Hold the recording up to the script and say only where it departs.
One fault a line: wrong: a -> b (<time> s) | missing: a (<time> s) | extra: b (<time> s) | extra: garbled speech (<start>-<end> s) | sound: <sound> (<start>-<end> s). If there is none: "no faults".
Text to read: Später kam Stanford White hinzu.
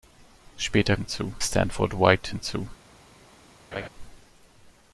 wrong: kam -> hinzu (0.9 s)
sound: laugh (3.7-3.9 s)